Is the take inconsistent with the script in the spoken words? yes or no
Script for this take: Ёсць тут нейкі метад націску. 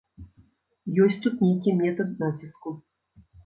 no